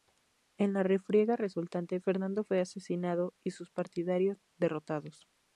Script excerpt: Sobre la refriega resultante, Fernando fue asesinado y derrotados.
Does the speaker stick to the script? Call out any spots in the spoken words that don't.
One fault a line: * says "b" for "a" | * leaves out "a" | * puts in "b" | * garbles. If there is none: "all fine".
* says "En" for "Sobre"
* puts in "sus partidarios"